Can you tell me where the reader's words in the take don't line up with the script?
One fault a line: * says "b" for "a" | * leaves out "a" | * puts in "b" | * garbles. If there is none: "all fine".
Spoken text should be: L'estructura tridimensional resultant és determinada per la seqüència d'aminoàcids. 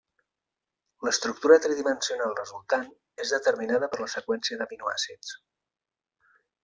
all fine